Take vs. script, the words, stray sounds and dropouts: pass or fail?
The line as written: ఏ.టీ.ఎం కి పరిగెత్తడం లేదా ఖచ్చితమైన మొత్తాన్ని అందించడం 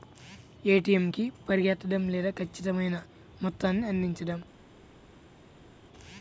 pass